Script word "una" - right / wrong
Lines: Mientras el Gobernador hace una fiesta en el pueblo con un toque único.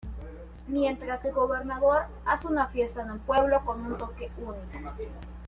right